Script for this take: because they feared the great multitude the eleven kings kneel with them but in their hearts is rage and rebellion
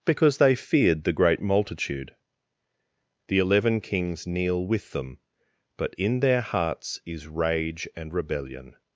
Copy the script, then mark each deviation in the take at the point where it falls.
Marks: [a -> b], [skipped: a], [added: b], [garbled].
because they feared the great multitude the eleven kings kneel with them but in their hearts is rage and rebellion